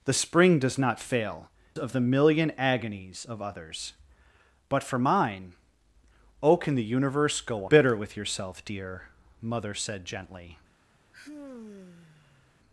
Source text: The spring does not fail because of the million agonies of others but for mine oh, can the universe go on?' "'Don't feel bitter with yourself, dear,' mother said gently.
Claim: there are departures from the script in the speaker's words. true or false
true